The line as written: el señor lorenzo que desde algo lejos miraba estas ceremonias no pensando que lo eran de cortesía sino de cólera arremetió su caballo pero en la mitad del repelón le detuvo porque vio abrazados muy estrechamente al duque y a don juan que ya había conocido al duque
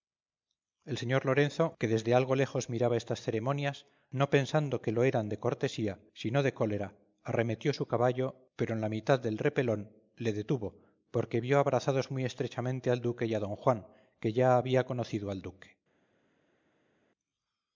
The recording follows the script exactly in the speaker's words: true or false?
true